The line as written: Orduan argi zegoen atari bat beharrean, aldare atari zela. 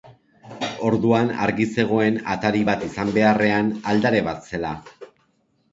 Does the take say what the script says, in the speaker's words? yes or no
no